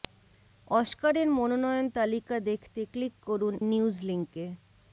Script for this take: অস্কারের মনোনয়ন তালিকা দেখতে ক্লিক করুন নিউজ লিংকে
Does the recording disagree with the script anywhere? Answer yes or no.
no